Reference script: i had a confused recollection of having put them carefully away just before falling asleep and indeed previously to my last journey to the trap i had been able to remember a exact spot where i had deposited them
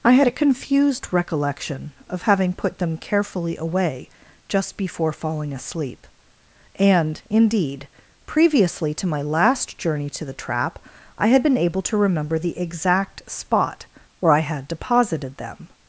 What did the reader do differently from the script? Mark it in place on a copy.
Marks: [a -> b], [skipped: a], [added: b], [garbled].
i had a confused recollection of having put them carefully away just before falling asleep and indeed previously to my last journey to the trap i had been able to remember [a -> the] exact spot where i had deposited them